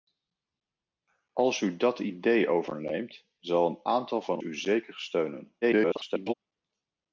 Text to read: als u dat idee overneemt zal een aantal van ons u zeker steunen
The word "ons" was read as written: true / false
false